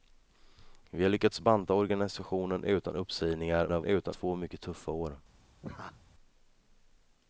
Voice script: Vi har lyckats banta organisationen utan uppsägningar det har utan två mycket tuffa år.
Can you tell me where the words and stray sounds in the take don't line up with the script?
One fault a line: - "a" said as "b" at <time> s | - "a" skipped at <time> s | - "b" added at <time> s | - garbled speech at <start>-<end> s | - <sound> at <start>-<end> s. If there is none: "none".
- laugh at 5.6-6.0 s